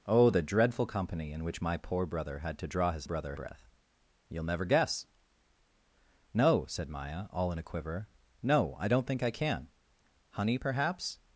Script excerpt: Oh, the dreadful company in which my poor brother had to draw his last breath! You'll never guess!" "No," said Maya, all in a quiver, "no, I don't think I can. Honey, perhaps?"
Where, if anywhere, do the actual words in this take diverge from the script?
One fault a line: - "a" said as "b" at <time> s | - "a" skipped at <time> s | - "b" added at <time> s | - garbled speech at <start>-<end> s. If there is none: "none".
- "last" said as "brother" at 3.0 s